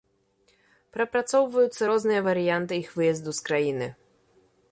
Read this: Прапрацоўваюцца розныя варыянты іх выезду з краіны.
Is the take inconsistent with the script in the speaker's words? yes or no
no